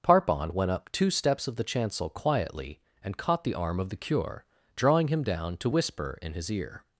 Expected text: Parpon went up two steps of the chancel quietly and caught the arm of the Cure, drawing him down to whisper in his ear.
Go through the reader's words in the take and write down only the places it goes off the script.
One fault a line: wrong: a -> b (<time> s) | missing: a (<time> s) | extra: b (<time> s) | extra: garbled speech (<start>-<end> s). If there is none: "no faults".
no faults